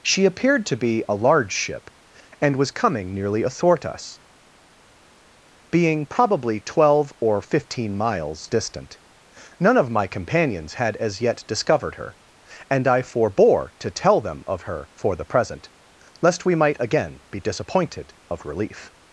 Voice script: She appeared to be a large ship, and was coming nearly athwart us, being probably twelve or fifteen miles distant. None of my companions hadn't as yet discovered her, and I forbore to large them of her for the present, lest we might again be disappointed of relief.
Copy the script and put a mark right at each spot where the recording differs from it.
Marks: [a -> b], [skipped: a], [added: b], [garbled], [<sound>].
She appeared to be a large ship, and was coming nearly athwart us, being probably twelve or fifteen miles distant. None of my companions [hadn't -> had] as yet discovered her, and I forbore to [large -> tell] them of her for the present, lest we might again be disappointed of relief.